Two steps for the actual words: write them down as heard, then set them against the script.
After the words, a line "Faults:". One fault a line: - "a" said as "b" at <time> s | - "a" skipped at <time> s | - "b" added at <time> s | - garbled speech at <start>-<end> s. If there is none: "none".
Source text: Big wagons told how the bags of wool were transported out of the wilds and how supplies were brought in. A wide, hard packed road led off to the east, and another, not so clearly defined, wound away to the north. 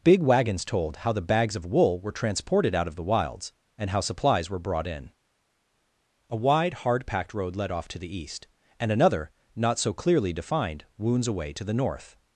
Big wagons told how the bags of wool were transported out of the wilds and how supplies were brought in. A wide, hard packed road led off to the east, and another, not so clearly defined, wounds away to the north.
Faults:
- "wound" said as "wounds" at 11.0 s